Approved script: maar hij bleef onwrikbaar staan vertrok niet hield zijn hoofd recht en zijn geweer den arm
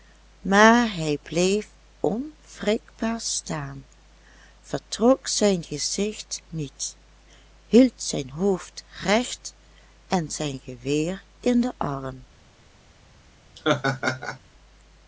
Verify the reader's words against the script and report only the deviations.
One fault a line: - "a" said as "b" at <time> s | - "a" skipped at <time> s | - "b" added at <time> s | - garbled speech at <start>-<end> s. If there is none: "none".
- "zijn gezicht" added at 5.3 s
- "in" added at 11.4 s